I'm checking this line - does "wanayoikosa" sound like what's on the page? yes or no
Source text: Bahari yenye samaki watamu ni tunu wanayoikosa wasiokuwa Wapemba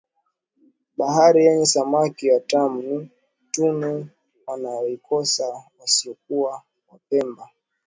yes